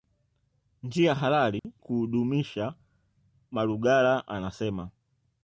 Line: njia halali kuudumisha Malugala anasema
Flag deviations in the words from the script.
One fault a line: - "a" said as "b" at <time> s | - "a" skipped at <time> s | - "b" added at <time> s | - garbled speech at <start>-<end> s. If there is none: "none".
none